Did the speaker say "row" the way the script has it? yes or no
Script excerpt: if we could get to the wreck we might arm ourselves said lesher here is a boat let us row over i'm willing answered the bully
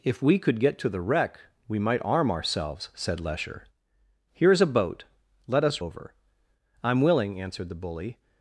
no